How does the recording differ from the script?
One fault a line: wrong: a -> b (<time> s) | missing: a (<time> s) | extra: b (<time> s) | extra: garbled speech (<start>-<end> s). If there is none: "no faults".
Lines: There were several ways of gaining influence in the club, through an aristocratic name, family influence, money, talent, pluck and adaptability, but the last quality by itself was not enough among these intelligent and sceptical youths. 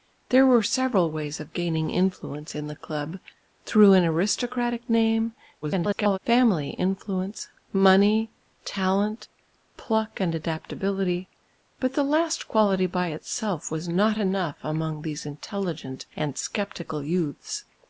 extra: garbled speech (5.6-6.2 s)